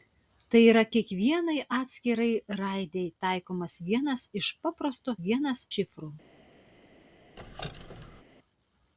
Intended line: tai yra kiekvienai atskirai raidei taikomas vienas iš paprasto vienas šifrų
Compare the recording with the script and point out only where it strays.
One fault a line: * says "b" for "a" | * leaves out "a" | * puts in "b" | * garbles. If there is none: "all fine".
all fine